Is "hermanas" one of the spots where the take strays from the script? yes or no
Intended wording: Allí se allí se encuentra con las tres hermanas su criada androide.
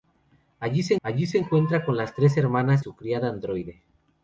no